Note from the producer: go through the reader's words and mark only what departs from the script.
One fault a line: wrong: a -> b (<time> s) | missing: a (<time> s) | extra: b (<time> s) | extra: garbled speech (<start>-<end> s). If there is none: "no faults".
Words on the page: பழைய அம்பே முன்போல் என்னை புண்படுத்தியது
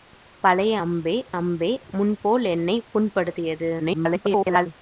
extra: அம்பே (1.3 s)
extra: garbled speech (3.8-4.7 s)